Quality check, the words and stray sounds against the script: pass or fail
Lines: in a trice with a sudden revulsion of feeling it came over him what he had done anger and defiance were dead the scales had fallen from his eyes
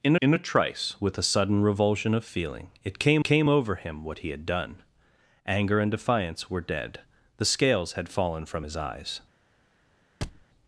fail